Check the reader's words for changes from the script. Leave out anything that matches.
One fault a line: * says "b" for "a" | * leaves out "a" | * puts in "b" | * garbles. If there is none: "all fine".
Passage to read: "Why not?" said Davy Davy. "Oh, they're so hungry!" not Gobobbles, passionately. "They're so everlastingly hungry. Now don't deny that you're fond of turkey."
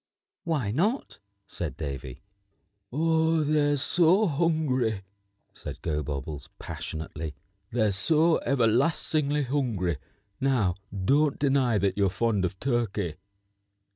* leaves out "Davy"
* says "said" for "not"